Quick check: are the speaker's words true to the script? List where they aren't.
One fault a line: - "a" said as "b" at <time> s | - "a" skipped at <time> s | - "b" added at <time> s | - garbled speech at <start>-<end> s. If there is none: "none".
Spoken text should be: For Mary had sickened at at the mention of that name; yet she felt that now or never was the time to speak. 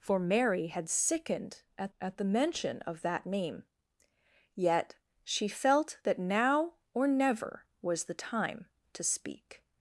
none